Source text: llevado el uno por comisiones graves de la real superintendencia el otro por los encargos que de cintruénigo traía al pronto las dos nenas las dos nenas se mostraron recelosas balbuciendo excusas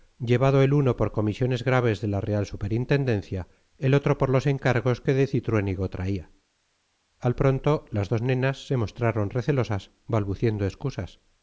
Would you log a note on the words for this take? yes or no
yes